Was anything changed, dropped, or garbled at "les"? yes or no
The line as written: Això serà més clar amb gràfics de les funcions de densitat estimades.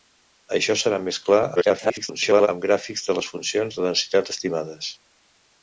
no